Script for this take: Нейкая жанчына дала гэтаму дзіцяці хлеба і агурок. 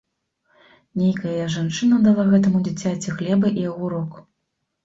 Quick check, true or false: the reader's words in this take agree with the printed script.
true